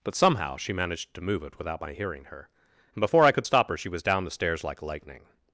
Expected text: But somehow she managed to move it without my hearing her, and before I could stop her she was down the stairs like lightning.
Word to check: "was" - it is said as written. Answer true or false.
true